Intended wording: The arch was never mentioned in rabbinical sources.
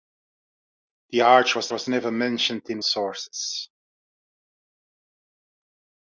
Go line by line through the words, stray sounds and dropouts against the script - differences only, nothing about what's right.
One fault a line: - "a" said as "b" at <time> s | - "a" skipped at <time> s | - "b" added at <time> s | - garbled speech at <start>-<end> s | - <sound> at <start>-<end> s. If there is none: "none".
- "was" added at 1.7 s
- "rabbinical" skipped at 2.8 s